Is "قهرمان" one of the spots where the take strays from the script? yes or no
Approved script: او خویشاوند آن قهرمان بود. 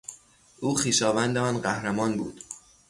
no